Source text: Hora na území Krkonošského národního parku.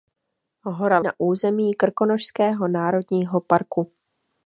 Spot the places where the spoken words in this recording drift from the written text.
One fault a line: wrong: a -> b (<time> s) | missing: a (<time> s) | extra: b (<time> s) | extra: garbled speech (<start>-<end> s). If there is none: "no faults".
no faults